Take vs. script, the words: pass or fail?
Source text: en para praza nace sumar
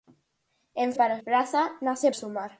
pass